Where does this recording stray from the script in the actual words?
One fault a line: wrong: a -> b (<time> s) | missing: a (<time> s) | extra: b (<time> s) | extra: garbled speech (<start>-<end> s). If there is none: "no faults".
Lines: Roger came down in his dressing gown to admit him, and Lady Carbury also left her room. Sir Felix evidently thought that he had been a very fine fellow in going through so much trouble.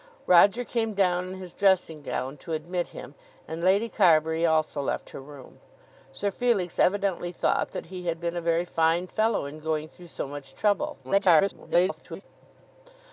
extra: garbled speech (11.0-12.2 s)